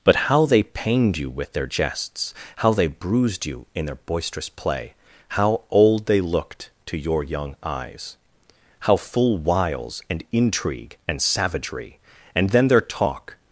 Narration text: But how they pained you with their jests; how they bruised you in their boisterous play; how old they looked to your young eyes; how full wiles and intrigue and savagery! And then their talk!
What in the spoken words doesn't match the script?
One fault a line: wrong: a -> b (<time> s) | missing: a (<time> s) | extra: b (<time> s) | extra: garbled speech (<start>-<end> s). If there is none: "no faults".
no faults